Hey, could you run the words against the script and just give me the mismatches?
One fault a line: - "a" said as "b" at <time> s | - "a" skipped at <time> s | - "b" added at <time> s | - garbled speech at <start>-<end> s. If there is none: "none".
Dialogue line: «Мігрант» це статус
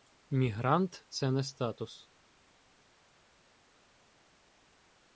- "не" added at 1.3 s